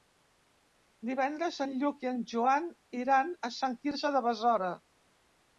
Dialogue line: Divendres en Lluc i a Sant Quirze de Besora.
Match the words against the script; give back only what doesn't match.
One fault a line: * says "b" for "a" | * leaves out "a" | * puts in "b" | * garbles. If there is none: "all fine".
* puts in "en Joan iran"